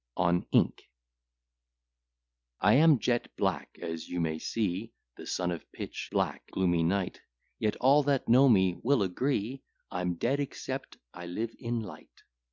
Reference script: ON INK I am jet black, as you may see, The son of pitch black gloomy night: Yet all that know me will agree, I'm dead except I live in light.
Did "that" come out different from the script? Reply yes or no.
no